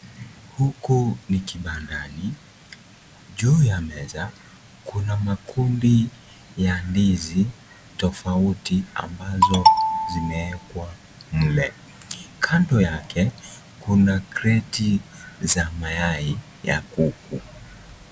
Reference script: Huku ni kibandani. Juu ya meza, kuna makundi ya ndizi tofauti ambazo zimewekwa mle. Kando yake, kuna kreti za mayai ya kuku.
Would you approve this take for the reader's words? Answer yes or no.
yes